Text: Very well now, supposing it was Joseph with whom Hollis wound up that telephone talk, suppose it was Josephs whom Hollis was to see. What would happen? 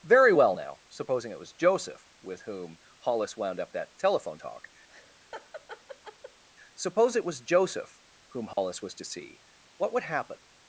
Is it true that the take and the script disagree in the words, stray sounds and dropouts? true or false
true